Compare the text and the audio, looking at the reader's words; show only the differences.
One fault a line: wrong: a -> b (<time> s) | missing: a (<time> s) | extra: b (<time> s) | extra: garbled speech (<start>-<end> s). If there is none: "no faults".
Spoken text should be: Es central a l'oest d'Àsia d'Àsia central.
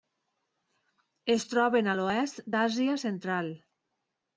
wrong: central -> troben (1.5 s)
missing: d'Àsia (3.0 s)